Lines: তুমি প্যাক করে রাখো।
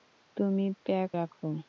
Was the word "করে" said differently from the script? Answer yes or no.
yes